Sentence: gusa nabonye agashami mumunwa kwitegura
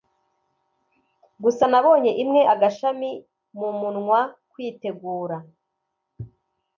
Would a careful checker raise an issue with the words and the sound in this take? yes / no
yes